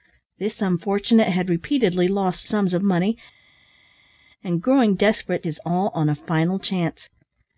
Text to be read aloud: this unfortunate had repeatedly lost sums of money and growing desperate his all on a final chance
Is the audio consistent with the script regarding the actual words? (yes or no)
yes